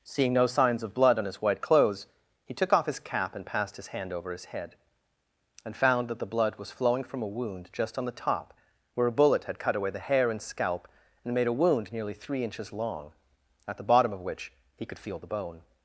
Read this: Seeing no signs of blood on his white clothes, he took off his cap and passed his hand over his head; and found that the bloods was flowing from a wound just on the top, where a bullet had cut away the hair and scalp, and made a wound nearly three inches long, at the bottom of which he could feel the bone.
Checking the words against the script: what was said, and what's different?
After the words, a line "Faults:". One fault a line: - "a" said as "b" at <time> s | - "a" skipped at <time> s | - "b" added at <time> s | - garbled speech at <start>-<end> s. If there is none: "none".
Seeing no signs of blood on his white clothes, he took off his cap and passed his hand over his head; and found that the blood was flowing from a wound just on the top, where a bullet had cut away the hair and scalp, and made a wound nearly three inches long, at the bottom of which he could feel the bone.
Faults:
- "bloods" said as "blood" at 6.3 s